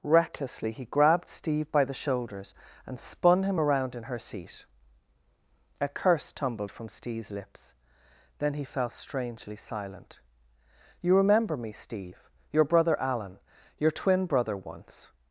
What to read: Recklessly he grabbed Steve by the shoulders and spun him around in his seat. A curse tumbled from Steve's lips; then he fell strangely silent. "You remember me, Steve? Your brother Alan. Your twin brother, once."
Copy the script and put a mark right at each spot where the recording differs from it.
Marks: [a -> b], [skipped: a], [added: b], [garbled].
Recklessly he grabbed Steve by the shoulders and spun him around in [his -> her] seat. A curse tumbled from Steve's lips; then he fell strangely silent. "You remember me, Steve? Your brother Alan. Your twin brother, once."